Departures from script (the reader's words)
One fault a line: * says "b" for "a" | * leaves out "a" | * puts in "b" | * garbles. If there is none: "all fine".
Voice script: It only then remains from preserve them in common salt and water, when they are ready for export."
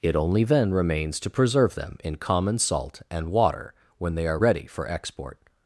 * says "to" for "from"